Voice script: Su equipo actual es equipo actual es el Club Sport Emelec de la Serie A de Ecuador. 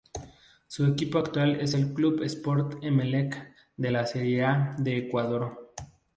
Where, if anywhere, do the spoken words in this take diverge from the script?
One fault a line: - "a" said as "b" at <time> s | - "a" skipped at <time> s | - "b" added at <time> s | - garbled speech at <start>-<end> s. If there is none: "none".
- "equipo actual es" skipped at 1.8 s